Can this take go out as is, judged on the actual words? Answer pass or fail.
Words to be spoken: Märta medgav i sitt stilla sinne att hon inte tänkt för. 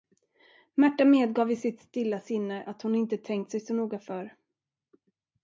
fail